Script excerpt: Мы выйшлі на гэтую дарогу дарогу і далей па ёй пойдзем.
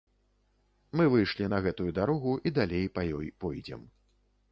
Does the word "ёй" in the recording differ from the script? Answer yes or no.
no